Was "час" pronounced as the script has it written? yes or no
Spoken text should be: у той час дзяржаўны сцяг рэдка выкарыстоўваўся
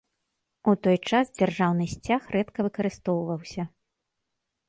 yes